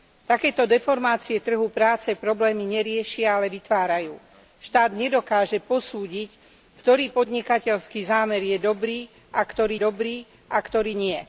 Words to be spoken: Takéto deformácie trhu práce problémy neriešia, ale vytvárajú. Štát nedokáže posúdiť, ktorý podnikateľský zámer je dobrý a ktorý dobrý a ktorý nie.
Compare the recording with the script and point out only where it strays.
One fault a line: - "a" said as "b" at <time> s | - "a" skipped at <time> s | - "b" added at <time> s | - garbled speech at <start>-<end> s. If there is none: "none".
none